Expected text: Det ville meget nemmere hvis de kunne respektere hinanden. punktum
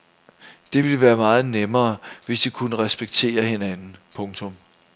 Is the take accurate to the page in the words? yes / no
no